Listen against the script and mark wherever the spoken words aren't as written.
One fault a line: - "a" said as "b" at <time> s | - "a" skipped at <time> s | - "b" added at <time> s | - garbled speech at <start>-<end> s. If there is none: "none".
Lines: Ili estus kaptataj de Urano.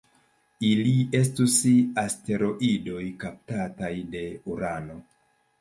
- "asteroidoj" added at 2.0 s